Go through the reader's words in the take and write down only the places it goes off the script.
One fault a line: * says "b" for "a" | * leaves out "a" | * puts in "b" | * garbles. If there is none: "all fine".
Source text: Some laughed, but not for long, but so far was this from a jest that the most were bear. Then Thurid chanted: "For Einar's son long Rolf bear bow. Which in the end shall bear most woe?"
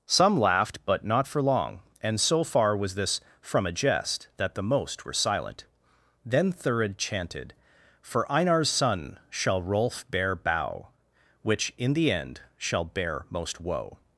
* says "and" for "but"
* says "silent" for "bear"
* says "shall" for "long"